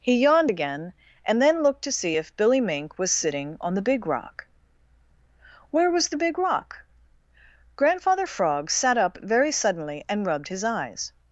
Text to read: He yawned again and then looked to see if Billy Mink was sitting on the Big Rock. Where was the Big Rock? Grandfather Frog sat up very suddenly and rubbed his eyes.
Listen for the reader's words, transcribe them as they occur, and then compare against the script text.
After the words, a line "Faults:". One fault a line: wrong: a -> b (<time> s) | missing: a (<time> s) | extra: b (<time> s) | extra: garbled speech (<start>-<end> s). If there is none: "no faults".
He yawned again and then looked to see if Billy Mink was sitting on the Big Rock. Where was the Big Rock? Grandfather Frog sat up very suddenly and rubbed his eyes.
Faults:
no faults